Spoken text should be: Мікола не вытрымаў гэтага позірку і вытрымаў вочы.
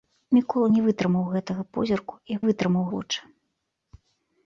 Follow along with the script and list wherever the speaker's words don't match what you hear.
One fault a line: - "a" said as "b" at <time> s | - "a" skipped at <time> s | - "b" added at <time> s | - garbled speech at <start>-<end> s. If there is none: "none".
none